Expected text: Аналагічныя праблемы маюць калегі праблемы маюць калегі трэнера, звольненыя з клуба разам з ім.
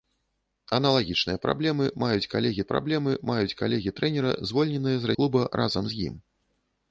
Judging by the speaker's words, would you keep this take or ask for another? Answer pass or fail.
pass